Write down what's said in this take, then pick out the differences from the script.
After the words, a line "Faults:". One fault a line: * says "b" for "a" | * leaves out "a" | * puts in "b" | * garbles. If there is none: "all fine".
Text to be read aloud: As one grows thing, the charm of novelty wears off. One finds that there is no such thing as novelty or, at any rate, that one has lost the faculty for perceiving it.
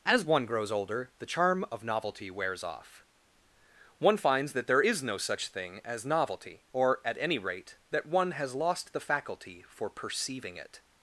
As one grows older, the charm of novelty wears off. One finds that there is no such thing as novelty or, at any rate, that one has lost the faculty for perceiving it.
Faults:
* says "older" for "thing"